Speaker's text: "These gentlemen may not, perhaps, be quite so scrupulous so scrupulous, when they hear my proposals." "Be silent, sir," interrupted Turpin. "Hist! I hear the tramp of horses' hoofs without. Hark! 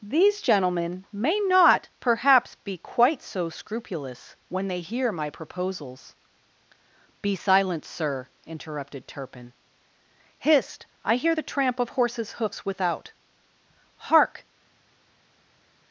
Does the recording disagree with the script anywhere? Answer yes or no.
yes